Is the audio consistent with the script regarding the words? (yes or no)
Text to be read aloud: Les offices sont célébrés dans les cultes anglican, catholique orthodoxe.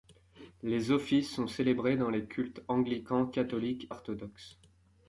yes